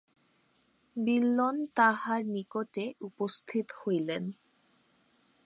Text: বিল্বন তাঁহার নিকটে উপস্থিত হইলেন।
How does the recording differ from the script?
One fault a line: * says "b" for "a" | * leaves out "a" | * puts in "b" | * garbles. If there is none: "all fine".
all fine